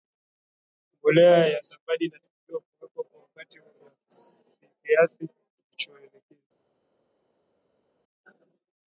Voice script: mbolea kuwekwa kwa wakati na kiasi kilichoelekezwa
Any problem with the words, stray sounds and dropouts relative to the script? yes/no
yes